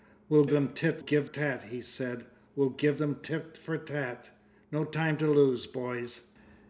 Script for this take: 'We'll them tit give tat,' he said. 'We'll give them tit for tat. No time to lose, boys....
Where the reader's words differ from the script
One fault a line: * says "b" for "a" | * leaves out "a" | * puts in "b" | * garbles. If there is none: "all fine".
all fine